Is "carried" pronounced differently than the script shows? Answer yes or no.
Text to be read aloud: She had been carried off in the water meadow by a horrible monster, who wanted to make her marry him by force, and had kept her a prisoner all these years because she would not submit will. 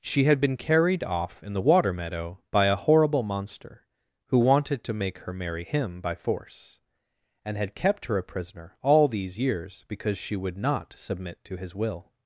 no